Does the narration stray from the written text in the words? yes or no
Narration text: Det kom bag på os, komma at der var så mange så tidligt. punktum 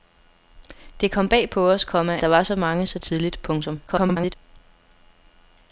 yes